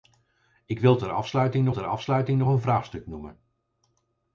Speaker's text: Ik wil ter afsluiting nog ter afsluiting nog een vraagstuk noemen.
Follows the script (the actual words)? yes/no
yes